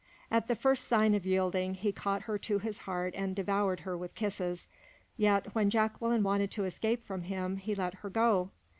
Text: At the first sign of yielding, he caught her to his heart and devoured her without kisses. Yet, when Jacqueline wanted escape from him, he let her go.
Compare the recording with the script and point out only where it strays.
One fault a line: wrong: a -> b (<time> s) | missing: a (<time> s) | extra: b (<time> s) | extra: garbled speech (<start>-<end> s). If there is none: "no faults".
wrong: without -> with (4.0 s)
extra: to (6.5 s)